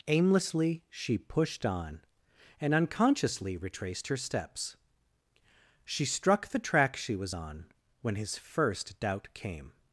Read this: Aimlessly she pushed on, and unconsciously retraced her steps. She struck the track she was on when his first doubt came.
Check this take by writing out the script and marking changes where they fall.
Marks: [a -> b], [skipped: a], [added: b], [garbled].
Aimlessly she pushed on, and unconsciously retraced her steps. She struck the track she was on when his first doubt came.